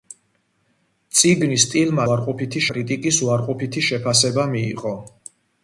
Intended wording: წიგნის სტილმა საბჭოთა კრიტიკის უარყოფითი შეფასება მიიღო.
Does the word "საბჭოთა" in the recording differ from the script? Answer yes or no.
yes